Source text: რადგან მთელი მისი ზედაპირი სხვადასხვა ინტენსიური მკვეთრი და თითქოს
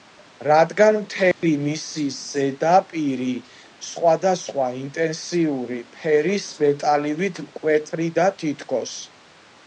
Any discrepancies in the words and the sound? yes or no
yes